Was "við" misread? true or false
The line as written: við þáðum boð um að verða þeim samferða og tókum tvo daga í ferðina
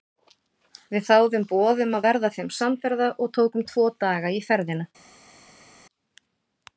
false